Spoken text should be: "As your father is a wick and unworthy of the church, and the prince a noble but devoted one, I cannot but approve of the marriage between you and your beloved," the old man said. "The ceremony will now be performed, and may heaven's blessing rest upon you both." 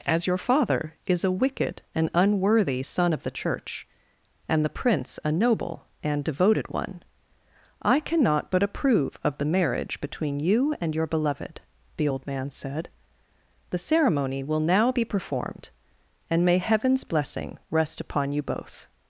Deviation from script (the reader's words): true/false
true